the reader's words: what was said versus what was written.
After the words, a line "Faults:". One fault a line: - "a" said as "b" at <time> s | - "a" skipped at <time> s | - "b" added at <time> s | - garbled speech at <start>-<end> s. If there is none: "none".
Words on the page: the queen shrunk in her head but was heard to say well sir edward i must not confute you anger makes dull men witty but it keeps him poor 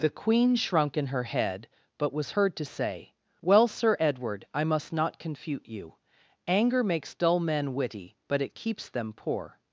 the queen shrunk in her head but was heard to say well sir edward i must not confute you anger makes dull men witty but it keeps them poor
Faults:
- "him" said as "them" at 8.9 s